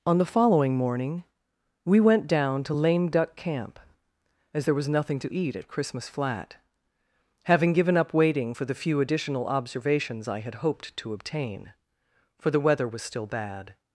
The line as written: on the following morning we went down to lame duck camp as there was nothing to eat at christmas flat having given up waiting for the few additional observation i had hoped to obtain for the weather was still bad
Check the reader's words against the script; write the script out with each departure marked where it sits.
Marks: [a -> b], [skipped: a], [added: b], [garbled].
on the following morning we went down to lame duck camp as there was nothing to eat at christmas flat having given up waiting for the few additional [observation -> observations] i had hoped to obtain for the weather was still bad